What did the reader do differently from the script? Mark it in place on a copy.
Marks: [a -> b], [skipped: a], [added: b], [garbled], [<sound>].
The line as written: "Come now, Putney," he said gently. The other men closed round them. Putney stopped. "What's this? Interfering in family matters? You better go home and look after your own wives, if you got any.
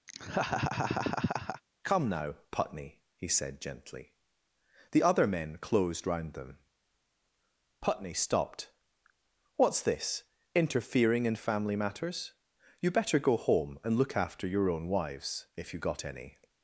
[laugh] "Come now, Putney," he said gently. The other men closed round them. Putney stopped. "What's this? Interfering in family matters? You better go home and look after your own wives, if you got any.